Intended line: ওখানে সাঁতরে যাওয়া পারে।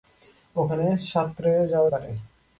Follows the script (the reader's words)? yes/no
yes